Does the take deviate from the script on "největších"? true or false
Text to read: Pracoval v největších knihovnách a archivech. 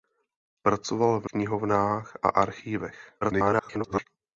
true